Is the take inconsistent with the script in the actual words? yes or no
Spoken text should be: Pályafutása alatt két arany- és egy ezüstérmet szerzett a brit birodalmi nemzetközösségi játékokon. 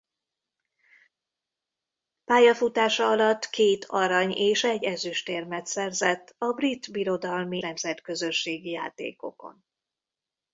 no